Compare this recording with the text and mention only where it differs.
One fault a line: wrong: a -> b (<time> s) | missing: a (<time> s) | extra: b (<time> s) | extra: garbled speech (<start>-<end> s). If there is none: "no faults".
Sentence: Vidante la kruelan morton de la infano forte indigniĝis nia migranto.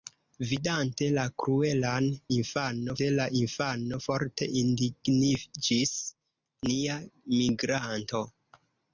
wrong: morton -> infano (2.4 s)